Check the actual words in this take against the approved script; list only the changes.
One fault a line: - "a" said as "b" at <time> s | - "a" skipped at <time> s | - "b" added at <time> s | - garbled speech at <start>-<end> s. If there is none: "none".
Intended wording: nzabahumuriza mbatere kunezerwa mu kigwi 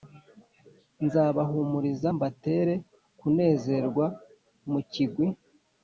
none